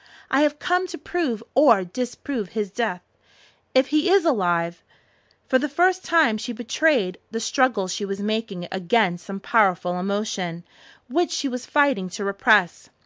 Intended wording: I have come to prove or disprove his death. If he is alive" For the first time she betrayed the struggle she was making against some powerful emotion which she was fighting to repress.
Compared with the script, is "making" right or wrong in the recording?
right